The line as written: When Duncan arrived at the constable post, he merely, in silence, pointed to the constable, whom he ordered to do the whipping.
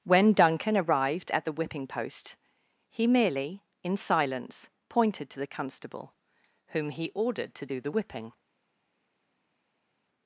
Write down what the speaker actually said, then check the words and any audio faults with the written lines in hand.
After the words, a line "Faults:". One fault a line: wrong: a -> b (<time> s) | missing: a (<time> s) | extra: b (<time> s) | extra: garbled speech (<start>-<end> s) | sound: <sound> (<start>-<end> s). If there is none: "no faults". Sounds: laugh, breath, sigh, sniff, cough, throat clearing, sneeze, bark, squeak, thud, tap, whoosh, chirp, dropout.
When Duncan arrived at the whipping post, he merely, in silence, pointed to the constable, whom he ordered to do the whipping.
Faults:
wrong: constable -> whipping (1.5 s)